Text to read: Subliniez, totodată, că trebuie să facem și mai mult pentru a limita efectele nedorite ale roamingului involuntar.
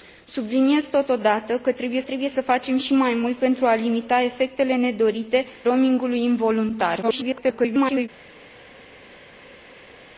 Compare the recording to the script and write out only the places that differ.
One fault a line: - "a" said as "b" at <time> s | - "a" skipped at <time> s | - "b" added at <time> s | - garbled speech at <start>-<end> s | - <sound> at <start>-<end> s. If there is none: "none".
- "trebuie" added at 2.0 s
- "ale" skipped at 5.5 s
- garbled speech at 7.0-8.1 s